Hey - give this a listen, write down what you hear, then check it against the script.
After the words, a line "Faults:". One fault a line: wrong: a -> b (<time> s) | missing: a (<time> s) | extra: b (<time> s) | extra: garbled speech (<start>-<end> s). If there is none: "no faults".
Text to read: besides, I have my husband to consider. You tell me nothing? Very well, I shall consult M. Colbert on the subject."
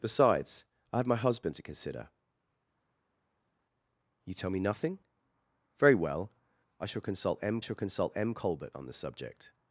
besides, I have my husband to consider. You tell me nothing? Very well, I shall consult M shall consult M. Colbert on the subject."
Faults:
extra: shall consult M (7.6 s)